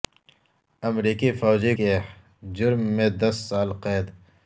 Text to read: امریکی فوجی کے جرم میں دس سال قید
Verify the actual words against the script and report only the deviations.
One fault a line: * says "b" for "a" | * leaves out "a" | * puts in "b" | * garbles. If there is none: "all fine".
all fine